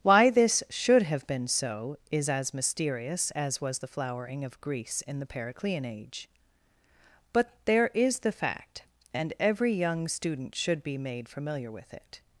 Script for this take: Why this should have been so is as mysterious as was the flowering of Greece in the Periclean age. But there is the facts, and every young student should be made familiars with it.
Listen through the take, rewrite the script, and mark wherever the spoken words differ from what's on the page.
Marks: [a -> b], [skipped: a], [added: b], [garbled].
Why this should have been so is as mysterious as was the flowering of Greece in the Periclean age. But there is the [facts, -> fact] and every young student should be made [familiars -> familiar] with it.